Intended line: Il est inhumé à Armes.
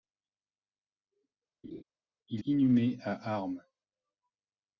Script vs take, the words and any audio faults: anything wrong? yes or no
yes